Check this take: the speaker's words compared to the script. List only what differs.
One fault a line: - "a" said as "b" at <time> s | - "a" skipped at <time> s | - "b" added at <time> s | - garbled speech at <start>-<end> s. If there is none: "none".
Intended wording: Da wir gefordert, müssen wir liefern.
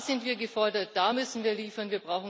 - "sind" added at 0.1 s
- "da" added at 0.9 s